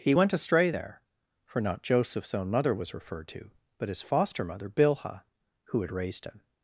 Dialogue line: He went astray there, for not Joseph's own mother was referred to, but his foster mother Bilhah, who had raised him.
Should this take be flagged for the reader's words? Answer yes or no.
no